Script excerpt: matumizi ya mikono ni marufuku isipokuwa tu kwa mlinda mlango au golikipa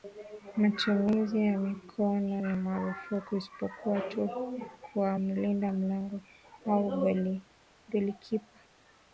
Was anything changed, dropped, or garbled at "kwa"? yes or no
no